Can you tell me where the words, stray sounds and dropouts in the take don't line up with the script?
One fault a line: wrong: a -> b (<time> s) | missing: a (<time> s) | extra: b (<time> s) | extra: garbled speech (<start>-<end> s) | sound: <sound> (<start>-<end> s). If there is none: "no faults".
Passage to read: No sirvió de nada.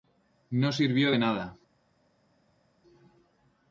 no faults